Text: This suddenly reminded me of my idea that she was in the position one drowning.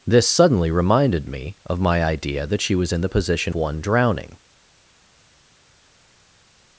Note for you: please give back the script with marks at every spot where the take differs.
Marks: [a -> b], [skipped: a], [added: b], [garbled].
This suddenly reminded me of my idea that she was in the position one drowning.